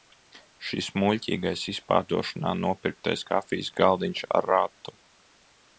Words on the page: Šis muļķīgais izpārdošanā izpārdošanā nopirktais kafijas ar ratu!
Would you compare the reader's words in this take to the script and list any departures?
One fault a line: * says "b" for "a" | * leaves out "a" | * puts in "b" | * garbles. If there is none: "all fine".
* leaves out "izpārdošanā"
* puts in "galdiņš"